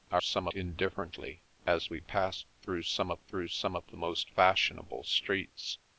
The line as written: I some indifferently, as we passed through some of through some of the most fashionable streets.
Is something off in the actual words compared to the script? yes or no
no